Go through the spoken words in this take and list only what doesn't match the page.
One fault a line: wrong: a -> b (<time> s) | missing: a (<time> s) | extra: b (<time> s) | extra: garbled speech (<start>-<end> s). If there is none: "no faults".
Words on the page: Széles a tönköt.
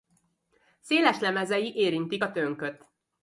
extra: lemezei érintik (1.2 s)